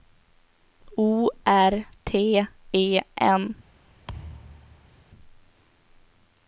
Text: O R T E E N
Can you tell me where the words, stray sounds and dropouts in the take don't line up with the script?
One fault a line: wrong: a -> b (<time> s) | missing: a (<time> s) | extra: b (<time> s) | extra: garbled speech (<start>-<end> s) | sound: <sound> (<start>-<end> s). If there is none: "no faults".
missing: E (3.0 s)
sound: thud (4.1-5.0 s)